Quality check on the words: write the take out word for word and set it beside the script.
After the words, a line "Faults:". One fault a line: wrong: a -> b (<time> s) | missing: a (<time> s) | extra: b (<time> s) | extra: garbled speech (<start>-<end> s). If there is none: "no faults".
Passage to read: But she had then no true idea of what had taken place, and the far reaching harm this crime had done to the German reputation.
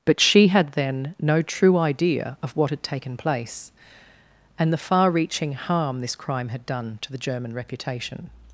But she had then no true idea of what had taken place, and the far reaching harm this crime had done to the German reputation.
Faults:
no faults